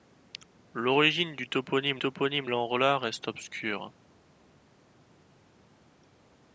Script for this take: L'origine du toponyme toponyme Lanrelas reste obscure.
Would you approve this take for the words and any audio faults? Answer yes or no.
yes